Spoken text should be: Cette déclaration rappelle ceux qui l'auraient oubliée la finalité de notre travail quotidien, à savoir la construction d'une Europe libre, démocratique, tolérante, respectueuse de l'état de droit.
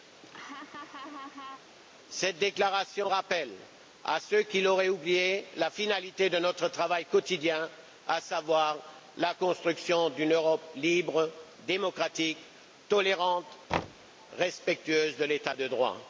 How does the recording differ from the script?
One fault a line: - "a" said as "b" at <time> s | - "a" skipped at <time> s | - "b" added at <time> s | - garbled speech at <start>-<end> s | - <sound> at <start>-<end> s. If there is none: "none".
- laugh at 0.2-1.8 s
- "à" added at 4.0 s
- thud at 13.7-14.1 s